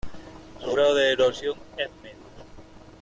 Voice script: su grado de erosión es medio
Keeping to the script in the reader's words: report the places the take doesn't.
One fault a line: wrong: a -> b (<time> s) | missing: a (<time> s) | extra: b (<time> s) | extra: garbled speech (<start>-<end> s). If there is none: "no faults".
no faults